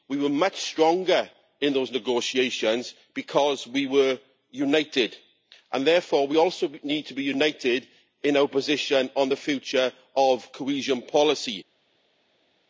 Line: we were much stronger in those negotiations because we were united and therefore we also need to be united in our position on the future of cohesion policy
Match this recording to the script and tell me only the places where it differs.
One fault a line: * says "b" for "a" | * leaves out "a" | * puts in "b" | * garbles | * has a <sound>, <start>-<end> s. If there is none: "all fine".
all fine